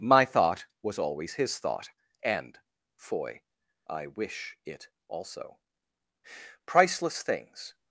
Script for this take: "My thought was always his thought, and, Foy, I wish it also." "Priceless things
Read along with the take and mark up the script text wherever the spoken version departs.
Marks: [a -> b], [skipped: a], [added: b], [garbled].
"My thought was always his thought, and, Foy, I wish it also." "Priceless things